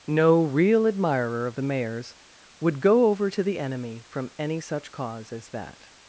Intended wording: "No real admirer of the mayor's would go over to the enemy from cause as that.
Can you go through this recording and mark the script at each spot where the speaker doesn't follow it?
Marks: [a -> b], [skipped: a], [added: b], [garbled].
"No real admirer of the mayor's would go over to the enemy from [added: any such] cause as that.